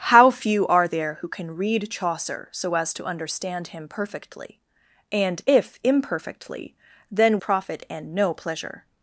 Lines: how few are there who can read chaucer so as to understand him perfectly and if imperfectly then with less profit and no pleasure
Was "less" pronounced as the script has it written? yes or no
no